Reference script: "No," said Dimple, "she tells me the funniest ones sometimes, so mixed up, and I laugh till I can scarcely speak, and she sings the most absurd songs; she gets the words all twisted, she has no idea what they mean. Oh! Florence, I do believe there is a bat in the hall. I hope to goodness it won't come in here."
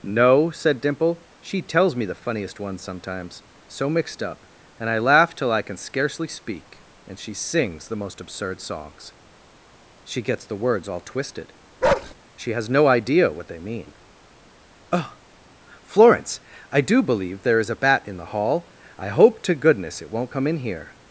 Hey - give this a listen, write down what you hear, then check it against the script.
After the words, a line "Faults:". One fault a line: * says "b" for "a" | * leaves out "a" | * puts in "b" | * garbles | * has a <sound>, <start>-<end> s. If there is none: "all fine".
"No," said Dimple, "she tells me the funniest ones sometimes, so mixed up, and I laugh till I can scarcely speak, and she sings the most absurd songs; she gets the words all twisted, she has no idea what they mean. Oh! Florence, I do believe there is a bat in the hall. I hope to goodness it won't come in here."
Faults:
* has a bark, 11.8-12.1 s